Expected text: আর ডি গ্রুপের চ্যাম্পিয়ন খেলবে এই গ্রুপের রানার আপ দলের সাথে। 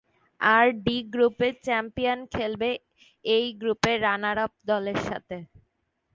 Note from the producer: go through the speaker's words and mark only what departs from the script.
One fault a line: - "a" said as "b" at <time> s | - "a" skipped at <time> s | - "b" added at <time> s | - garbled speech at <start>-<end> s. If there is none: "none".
none